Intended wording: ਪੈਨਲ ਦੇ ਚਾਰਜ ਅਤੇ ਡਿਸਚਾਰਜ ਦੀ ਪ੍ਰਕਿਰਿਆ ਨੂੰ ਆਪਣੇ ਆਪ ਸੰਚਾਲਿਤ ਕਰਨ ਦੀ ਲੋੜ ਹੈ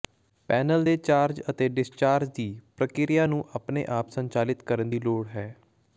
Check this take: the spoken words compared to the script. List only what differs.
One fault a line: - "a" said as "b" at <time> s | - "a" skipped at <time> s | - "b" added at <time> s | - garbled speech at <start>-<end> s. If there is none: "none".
none